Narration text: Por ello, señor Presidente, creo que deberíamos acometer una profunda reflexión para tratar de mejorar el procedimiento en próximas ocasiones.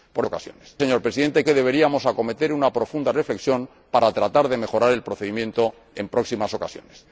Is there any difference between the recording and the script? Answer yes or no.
yes